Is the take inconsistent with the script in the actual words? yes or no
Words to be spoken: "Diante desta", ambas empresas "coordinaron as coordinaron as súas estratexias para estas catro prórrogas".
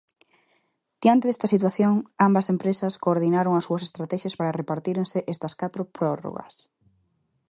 yes